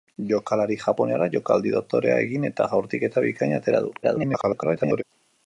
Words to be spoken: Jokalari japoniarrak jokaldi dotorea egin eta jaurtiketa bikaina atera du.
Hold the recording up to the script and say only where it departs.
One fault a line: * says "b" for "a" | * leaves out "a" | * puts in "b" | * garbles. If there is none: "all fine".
* garbles